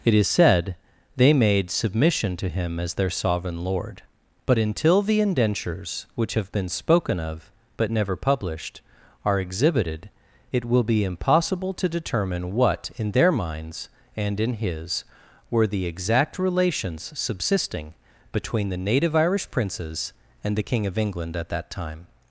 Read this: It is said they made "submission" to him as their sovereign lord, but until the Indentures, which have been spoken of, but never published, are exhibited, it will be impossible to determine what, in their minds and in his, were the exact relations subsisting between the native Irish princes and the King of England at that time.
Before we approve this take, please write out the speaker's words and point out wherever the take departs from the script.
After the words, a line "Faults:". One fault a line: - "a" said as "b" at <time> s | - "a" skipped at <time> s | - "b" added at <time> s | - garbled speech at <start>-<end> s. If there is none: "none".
It is said they made "submission" to him as their sovereign lord, but until the Indentures, which have been spoken of, but never published, are exhibited, it will be impossible to determine what, in their minds and in his, were the exact relations subsisting between the native Irish princes and the King of England at that time.
Faults:
none